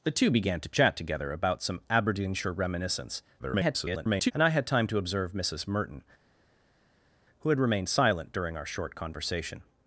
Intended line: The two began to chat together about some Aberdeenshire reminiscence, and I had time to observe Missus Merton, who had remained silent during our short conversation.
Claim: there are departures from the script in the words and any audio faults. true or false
true